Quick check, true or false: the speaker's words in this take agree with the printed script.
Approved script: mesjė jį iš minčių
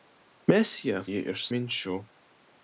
true